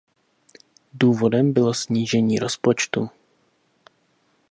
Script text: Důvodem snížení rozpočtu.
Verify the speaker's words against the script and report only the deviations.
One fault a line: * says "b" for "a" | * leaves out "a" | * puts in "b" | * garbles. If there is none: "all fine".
* puts in "bylo"